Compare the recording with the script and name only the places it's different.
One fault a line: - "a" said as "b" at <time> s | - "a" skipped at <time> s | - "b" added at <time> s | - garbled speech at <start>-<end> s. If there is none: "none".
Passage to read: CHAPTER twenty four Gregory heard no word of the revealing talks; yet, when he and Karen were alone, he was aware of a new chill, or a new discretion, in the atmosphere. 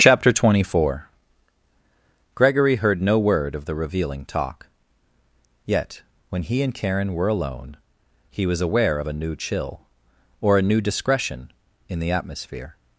- "talks" said as "talk" at 4.2 s